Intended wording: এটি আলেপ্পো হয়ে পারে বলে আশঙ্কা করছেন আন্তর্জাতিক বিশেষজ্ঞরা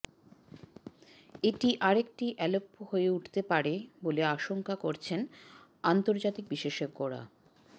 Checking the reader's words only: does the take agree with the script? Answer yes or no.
no